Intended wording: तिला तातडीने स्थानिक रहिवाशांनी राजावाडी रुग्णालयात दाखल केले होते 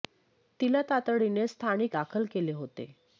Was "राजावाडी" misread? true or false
true